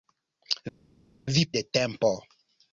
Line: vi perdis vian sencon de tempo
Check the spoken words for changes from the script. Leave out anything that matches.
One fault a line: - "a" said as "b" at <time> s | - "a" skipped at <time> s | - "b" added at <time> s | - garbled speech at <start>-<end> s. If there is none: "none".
- "perdis vian sencon" skipped at 1.4 s